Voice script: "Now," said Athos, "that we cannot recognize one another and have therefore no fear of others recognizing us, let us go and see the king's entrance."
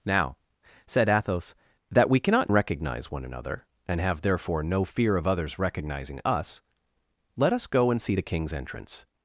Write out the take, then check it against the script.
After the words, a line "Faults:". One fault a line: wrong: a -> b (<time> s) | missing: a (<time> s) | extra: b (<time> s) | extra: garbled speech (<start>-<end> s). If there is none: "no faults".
"Now," said Athos, "that we cannot recognize one another and have therefore no fear of others recognizing us, let us go and see the king's entrance."
Faults:
no faults